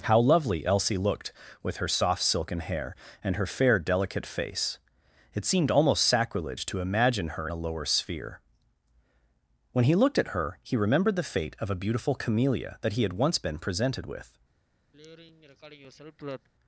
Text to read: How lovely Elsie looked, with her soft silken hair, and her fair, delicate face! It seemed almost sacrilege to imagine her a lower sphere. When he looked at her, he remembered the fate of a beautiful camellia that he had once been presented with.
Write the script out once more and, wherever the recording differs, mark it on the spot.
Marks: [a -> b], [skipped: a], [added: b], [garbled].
How lovely Elsie looked, with her soft silken hair, and her fair, delicate face! It seemed almost sacrilege to imagine her a lower sphere. When he looked at her, he remembered the fate of a beautiful camellia that he had once been presented with.